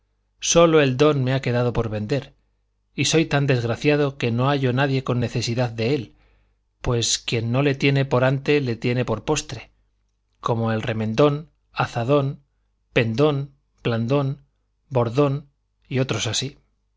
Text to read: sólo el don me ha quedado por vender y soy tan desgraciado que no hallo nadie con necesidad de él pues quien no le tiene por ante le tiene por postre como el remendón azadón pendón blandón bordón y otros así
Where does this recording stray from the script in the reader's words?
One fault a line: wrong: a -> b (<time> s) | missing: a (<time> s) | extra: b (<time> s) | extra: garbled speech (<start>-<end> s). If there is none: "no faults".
no faults